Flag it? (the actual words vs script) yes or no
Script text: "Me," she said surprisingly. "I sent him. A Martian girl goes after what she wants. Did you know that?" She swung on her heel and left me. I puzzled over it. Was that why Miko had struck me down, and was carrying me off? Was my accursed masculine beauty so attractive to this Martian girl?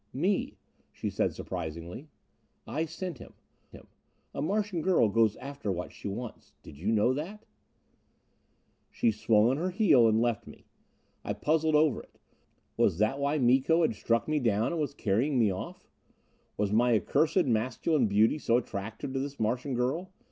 yes